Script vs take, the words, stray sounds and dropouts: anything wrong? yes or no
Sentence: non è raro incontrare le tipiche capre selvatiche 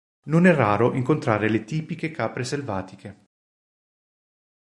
no